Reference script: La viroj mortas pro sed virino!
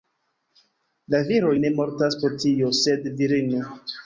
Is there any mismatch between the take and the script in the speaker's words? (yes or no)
yes